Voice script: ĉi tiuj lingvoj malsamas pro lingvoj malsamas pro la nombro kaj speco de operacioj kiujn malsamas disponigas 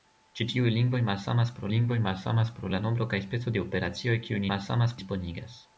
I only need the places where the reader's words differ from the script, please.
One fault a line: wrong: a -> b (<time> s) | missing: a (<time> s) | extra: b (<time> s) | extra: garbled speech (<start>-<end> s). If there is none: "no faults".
no faults